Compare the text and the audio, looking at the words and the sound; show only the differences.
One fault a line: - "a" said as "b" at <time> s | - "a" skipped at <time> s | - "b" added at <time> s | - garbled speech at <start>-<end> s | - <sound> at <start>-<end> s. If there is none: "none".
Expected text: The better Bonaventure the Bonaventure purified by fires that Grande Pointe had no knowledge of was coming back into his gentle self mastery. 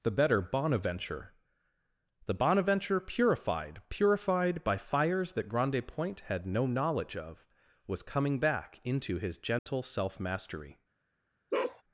- "purified" added at 3.9 s
- dropout at 9.6-9.7 s
- bark at 11.5-11.8 s